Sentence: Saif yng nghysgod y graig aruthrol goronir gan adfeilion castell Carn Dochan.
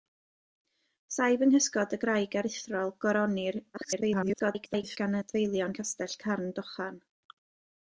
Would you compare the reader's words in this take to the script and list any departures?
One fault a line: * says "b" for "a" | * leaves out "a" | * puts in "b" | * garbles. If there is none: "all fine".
* garbles